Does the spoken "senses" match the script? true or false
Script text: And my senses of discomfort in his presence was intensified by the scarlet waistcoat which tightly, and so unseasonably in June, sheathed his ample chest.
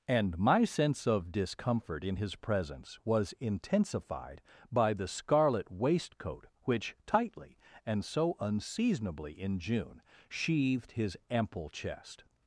false